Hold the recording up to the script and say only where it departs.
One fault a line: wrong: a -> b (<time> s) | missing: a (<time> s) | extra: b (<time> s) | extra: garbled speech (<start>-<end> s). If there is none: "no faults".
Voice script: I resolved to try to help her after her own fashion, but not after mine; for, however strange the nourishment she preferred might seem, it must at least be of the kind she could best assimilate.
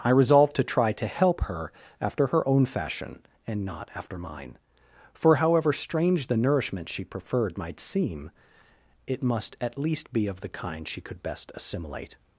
wrong: but -> and (3.5 s)